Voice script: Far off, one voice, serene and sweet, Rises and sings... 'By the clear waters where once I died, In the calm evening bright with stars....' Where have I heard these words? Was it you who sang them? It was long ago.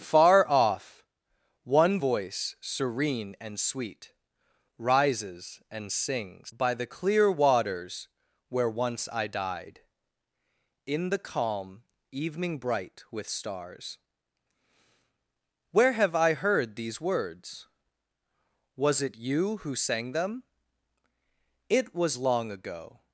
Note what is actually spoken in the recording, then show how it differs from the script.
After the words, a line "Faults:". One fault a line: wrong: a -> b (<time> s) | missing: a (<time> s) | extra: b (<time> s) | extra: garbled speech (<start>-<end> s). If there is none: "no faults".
Far off, one voice, serene and sweet, Rises and sings... 'By the clear waters where once I died, In the calm evening bright with stars....' Where have I heard these words? Was it you who sang them? It was long ago.
Faults:
no faults